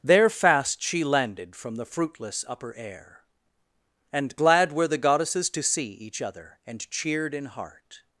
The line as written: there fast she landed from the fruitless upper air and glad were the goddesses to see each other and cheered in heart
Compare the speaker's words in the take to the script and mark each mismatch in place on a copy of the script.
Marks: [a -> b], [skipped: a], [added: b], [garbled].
there fast she landed from the fruitless upper air and glad were the goddesses to see each other and cheered in heart